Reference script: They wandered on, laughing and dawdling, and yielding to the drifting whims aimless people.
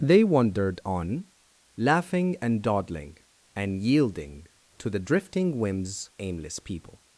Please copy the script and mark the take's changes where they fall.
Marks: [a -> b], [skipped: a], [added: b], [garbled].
They wandered on, laughing and dawdling, and yielding to the drifting whims aimless people.